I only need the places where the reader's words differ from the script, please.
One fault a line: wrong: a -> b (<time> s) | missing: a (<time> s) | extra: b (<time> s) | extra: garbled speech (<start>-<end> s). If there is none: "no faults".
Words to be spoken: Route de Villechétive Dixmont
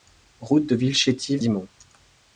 no faults